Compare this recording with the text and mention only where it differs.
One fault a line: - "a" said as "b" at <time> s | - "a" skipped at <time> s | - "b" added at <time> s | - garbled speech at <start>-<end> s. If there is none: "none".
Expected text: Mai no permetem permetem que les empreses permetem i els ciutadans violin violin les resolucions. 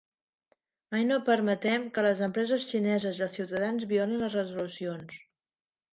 - "permetem" skipped at 1.9 s
- "permetem" said as "xineses" at 2.7 s
- "violin" skipped at 4.2 s